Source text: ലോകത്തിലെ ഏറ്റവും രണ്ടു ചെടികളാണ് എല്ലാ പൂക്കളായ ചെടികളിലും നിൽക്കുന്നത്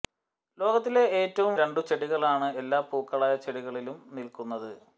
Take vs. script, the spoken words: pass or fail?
pass